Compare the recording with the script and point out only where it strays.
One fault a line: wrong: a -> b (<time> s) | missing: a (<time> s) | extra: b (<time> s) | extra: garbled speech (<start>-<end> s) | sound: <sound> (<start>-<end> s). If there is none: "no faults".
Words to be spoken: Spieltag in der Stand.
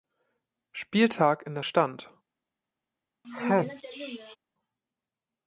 sound: sneeze (3.2-4.4 s)